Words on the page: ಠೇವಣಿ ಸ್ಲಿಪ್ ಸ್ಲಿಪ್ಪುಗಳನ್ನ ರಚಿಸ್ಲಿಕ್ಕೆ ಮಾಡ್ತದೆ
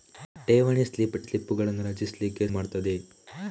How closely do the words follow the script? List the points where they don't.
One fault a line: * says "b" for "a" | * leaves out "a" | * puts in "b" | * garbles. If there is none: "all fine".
all fine